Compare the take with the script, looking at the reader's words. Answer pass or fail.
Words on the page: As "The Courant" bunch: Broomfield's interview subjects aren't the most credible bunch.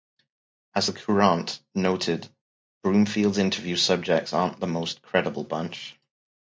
fail